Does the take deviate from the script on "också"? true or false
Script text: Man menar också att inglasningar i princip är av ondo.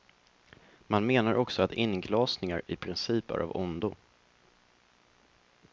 false